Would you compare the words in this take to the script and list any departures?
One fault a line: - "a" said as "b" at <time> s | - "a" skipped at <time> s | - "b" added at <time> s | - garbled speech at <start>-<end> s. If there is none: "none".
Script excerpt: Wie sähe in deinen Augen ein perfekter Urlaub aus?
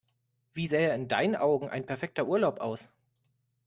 none